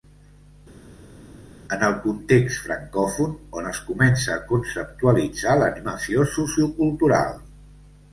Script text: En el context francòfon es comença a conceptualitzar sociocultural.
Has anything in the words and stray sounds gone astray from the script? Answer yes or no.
yes